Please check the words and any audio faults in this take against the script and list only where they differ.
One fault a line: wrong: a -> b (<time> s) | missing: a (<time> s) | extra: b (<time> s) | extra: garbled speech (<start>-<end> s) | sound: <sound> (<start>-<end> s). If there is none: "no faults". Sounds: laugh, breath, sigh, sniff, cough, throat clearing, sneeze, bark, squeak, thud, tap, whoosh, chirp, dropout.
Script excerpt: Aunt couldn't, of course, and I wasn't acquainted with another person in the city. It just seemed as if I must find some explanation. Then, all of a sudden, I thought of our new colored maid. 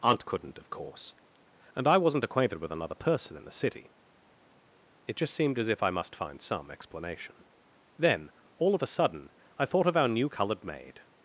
no faults